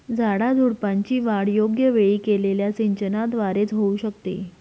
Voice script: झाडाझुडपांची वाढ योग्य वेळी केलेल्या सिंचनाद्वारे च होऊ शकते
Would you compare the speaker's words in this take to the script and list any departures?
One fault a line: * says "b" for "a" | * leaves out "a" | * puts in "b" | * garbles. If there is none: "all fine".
all fine